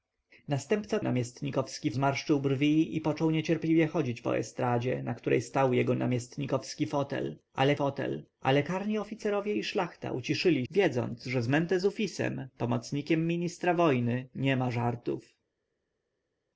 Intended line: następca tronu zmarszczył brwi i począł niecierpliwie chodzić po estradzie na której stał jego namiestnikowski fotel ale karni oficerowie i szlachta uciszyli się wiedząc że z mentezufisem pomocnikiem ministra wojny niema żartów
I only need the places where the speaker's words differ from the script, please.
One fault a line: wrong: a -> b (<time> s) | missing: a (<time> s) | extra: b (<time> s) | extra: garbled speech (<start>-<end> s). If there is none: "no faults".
wrong: tronu -> namiestnikowski (1.0 s)
extra: fotel ale (7.7 s)
missing: się (10.7 s)